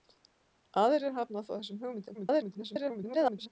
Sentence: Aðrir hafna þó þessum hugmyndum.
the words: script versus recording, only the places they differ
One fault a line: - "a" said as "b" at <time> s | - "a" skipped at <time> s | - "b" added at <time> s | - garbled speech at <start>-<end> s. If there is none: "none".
- garbled speech at 2.1-3.5 s